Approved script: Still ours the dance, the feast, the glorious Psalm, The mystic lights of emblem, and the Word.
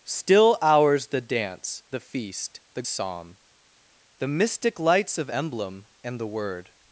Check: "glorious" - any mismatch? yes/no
yes